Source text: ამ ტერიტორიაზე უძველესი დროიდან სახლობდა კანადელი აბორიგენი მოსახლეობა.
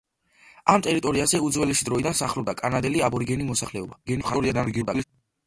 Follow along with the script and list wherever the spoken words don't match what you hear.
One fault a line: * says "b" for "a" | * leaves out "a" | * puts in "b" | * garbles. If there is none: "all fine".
* garbles